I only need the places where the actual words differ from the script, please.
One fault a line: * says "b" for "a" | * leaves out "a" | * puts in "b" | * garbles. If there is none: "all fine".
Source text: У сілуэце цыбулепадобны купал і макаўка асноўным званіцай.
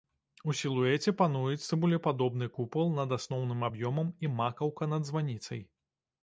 * puts in "пануюць"
* puts in "над асноўным аб'ёмам"
* says "над" for "асноўным"